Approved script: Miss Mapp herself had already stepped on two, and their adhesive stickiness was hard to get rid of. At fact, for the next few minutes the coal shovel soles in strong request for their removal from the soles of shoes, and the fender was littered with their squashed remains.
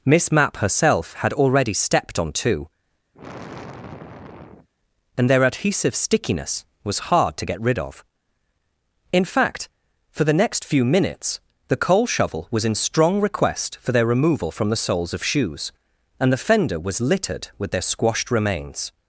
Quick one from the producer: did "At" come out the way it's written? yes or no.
no